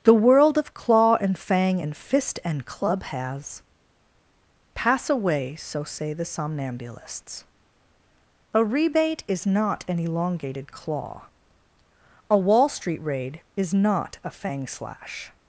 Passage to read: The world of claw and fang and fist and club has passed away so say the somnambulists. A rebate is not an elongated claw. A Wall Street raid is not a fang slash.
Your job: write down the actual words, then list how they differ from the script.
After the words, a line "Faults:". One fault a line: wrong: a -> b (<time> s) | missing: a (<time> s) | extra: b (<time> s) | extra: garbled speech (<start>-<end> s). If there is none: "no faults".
The world of claw and fang and fist and club has pass away so say the somnambulists. A rebate is not an elongated claw. A Wall Street raid is not a fang slash.
Faults:
wrong: passed -> pass (4.7 s)